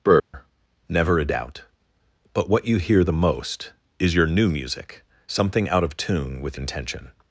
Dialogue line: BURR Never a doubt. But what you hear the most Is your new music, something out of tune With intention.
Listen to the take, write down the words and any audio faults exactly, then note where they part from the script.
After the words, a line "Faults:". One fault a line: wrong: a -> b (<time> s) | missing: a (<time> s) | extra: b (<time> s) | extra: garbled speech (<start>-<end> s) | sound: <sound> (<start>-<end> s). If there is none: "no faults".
BURR Never a doubt. But what you hear the most Is your new music, something out of tune With intention.
Faults:
sound: dropout (0.2-0.3 s)